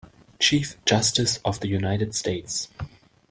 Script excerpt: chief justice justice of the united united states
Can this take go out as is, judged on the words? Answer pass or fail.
fail